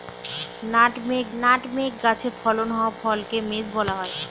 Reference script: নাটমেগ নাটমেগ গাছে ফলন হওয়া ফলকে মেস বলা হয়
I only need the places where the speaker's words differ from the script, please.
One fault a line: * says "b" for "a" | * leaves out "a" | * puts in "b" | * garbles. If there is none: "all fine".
all fine